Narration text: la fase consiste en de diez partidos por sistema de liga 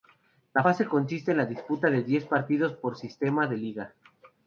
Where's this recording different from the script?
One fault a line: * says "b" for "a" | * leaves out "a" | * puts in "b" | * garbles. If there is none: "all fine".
* puts in "la disputa"